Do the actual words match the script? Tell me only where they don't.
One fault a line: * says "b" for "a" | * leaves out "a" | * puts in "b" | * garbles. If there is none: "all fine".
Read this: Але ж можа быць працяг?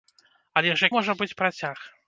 all fine